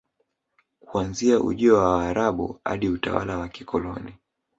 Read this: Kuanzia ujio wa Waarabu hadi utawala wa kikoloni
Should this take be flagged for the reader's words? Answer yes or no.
no